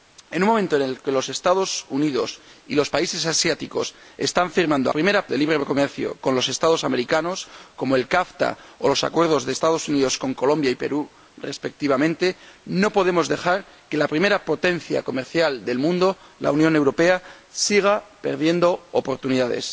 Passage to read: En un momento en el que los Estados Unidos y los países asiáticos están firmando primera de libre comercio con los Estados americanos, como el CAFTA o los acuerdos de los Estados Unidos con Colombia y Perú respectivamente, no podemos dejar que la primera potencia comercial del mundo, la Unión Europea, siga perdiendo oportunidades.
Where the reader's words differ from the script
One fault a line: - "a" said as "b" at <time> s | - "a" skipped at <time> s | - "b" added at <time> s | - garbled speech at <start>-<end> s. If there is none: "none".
none